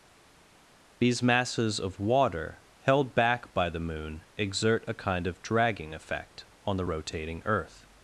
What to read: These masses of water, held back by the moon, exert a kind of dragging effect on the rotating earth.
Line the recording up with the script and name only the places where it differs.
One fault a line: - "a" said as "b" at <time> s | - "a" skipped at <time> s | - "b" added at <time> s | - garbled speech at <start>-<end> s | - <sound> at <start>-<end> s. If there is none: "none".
none